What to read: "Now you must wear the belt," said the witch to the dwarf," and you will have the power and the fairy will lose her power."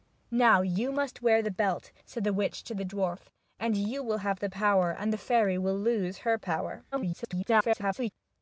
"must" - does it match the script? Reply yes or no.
yes